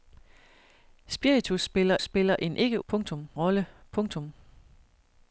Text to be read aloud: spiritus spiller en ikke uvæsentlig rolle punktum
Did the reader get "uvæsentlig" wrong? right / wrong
wrong